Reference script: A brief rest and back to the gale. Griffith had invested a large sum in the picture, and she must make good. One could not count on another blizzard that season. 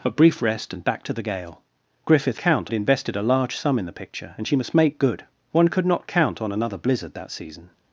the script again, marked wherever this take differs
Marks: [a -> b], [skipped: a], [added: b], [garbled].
A brief rest and back to the gale. Griffith [had -> count] invested a large sum in the picture, and she must make good. One could not count on another blizzard that season.